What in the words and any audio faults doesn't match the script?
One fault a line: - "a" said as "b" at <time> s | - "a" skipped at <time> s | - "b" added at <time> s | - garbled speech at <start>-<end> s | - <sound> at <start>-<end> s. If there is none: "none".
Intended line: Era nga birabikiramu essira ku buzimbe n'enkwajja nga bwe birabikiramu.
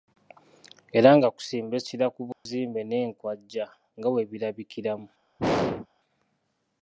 - "birabikiramu" said as "kusimba" at 1.4 s
- dropout at 2.3-2.5 s
- throat clearing at 5.4-5.9 s